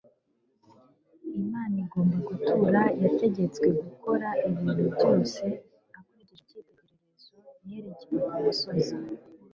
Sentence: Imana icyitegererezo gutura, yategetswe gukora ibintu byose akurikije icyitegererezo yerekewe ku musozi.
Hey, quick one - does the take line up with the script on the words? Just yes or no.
no